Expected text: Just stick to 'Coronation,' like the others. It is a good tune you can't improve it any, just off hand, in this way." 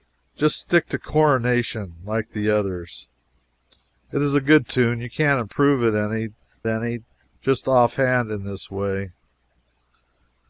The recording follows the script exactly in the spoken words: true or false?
false